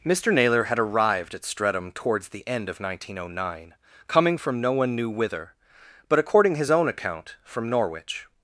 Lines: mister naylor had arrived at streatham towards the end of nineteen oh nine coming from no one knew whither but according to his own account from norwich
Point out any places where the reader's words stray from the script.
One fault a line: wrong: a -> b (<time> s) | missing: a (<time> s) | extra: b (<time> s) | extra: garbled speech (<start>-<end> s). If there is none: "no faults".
missing: to (6.5 s)